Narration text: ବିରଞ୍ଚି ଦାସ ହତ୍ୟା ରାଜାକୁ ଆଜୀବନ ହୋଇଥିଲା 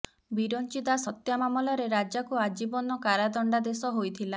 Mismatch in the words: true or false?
true